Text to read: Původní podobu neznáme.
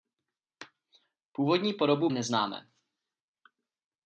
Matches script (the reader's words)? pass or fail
pass